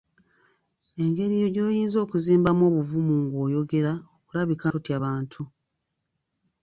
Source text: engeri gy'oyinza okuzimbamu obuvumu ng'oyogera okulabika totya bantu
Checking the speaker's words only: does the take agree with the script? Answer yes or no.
yes